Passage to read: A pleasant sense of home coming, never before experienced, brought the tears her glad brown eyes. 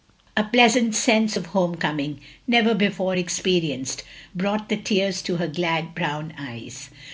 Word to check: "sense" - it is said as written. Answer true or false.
true